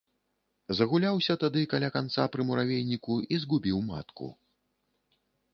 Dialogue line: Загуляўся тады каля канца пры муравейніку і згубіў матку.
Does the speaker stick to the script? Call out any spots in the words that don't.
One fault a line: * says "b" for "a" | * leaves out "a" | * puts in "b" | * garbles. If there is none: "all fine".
all fine